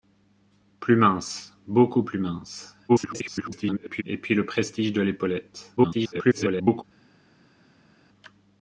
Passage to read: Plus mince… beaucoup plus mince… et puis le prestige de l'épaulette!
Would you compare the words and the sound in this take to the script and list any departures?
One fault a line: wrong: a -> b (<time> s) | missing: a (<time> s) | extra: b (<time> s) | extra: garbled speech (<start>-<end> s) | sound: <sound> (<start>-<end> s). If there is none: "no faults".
extra: garbled speech (2.9-4.0 s)
extra: garbled speech (5.8-6.8 s)